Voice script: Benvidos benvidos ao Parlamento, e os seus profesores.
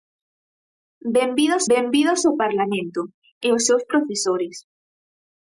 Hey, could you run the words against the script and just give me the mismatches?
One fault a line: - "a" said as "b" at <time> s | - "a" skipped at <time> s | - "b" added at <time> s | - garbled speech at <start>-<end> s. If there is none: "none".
none